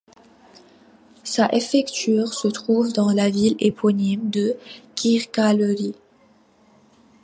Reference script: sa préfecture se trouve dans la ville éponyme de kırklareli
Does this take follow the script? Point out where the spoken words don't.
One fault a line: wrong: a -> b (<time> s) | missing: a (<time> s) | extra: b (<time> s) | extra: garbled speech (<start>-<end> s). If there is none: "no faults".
no faults